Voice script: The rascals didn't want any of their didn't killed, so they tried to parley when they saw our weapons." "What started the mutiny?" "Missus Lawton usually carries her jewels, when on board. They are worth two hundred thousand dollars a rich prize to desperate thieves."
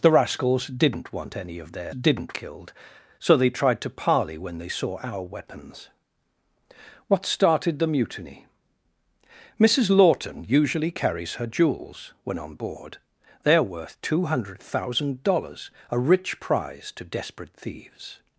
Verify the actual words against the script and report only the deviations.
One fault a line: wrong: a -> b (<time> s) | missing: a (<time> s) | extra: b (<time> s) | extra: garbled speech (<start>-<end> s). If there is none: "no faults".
no faults